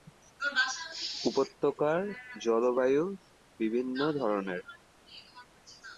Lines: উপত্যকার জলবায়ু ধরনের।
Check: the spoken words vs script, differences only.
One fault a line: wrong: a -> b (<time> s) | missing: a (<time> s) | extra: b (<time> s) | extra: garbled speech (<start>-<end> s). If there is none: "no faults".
extra: বিভিন্ন (3.6 s)